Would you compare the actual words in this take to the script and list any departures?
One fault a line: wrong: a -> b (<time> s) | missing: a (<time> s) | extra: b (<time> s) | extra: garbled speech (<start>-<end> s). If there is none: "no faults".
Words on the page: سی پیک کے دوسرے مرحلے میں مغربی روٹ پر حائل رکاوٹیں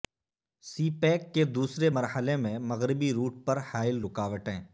no faults